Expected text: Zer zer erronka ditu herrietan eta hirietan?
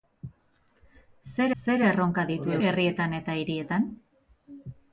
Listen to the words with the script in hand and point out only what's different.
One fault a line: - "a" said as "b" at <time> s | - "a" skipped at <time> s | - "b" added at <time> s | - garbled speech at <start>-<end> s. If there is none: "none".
none